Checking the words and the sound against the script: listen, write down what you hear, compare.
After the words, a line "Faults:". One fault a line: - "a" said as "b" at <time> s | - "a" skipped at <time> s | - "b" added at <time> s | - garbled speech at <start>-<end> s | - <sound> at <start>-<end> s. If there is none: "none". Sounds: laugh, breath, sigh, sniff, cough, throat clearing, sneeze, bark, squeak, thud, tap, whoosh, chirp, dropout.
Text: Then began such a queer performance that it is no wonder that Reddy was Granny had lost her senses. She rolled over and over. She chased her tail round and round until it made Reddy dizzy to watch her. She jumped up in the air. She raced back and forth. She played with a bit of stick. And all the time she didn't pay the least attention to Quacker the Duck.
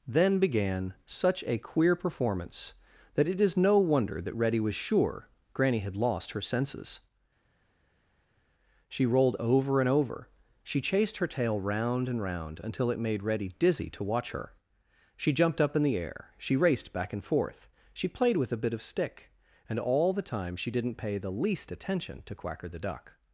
Then began such a queer performance that it is no wonder that Reddy was sure Granny had lost her senses. She rolled over and over. She chased her tail round and round until it made Reddy dizzy to watch her. She jumped up in the air. She raced back and forth. She played with a bit of stick. And all the time she didn't pay the least attention to Quacker the Duck.
Faults:
- "sure" added at 4.7 s